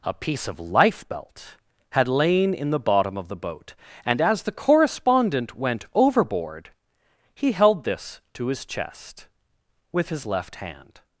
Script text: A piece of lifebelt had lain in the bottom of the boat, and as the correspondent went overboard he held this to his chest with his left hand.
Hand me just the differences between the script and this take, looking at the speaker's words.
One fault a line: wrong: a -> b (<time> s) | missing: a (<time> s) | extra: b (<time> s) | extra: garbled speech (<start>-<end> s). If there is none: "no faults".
no faults